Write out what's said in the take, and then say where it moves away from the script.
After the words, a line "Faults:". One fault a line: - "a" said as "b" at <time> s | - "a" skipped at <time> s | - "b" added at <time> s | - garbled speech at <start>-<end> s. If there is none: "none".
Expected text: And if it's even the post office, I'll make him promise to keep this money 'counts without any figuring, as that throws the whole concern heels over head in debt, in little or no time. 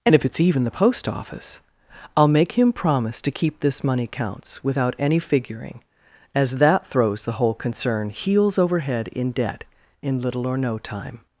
And if it's even the post office, I'll make him promise to keep this money 'counts without any figuring, as that throws the whole concern heels over head in debt, in little or no time.
Faults:
none